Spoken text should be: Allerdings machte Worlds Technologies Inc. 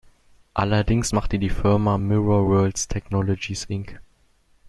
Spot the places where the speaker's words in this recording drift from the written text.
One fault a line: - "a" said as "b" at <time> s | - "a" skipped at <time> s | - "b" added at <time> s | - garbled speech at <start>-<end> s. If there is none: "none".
- "die Firma Mirror" added at 1.4 s